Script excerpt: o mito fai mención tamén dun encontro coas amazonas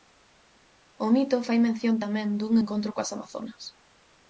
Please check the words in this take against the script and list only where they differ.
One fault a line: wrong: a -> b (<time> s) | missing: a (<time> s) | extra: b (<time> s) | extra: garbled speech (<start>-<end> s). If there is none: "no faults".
no faults